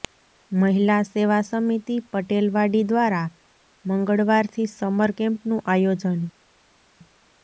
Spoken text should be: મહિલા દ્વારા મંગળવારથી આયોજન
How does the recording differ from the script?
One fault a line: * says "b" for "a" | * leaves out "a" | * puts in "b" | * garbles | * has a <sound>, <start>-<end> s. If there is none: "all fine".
* puts in "સેવા સમિતિ પટેલવાડી"
* puts in "સમર કેમ્પનું"